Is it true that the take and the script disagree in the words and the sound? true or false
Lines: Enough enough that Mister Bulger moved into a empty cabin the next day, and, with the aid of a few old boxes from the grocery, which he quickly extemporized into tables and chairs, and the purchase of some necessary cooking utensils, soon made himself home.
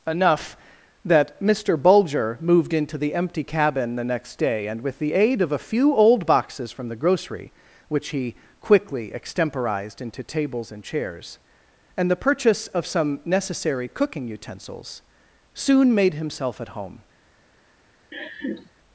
true